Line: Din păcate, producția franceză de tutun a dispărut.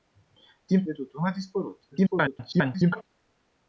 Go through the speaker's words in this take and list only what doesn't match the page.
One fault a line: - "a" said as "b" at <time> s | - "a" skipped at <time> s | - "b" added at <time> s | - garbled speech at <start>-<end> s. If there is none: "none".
- "păcate producția franceză" skipped at 0.8 s
- garbled speech at 1.9-3.0 s